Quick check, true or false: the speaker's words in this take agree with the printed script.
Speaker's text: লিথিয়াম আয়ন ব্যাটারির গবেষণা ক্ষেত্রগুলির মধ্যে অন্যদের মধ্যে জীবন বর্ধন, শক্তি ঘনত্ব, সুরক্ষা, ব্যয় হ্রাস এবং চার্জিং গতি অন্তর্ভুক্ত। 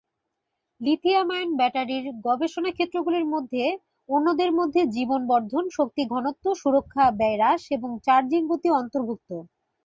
true